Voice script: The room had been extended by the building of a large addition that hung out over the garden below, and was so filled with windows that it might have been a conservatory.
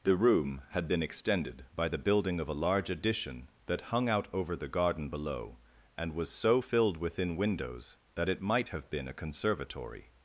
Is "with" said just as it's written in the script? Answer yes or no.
no